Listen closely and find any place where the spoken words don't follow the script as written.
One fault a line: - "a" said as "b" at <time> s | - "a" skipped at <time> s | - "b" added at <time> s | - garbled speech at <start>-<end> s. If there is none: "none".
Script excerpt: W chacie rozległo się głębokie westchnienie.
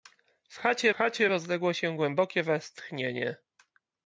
- "chacie" added at 0.9 s